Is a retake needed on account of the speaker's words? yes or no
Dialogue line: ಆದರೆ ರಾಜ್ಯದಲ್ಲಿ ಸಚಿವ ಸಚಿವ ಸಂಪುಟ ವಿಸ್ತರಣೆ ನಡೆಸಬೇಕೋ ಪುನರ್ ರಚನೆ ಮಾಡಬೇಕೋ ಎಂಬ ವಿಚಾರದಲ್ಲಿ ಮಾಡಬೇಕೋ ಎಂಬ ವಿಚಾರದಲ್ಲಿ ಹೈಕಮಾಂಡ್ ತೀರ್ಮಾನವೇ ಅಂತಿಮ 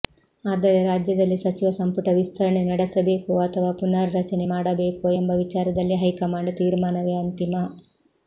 yes